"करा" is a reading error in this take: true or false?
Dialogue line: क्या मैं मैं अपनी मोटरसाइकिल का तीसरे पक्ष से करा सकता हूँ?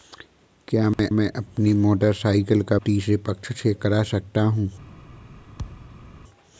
false